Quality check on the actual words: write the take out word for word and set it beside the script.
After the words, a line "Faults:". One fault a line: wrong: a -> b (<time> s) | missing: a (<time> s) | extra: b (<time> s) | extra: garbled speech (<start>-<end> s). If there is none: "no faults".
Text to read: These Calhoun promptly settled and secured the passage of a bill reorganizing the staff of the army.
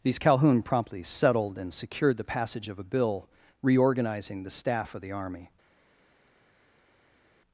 These Calhoun promptly settled and secured the passage of a bill reorganizing the staff of the army.
Faults:
no faults